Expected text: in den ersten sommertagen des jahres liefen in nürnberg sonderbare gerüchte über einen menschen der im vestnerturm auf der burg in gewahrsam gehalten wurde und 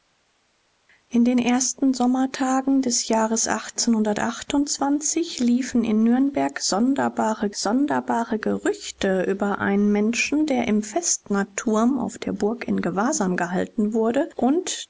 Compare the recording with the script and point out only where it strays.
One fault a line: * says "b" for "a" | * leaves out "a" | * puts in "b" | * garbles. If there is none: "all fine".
* puts in "sonderbare"